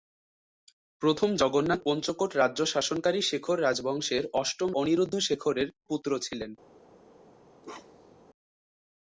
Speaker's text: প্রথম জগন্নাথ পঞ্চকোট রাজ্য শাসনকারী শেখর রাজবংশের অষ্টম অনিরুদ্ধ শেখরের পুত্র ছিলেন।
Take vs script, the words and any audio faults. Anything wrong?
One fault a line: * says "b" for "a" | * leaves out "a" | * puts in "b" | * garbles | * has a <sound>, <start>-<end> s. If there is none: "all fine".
* has a bark, 7.6-8.2 s